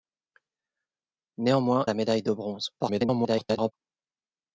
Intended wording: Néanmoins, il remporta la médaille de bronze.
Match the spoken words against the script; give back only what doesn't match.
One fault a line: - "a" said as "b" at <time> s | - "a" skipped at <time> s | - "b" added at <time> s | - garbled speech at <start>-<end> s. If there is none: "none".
- "il remporta" skipped at 1.9 s
- garbled speech at 2.8-3.7 s